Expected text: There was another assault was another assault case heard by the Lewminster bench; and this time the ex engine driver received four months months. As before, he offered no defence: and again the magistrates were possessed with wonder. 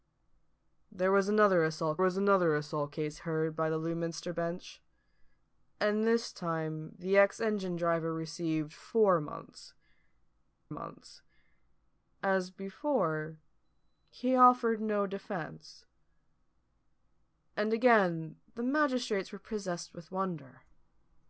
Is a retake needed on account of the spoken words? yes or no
no